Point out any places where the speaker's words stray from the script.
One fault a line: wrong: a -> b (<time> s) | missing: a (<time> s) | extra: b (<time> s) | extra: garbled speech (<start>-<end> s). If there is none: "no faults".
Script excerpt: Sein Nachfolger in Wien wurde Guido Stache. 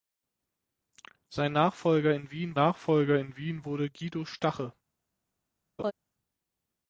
extra: Nachfolger in Wien (2.5 s)